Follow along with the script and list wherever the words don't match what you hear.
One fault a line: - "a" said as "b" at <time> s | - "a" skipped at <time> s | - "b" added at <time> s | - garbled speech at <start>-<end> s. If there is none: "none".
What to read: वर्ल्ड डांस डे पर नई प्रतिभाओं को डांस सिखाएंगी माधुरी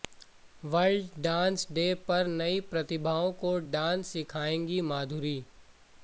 none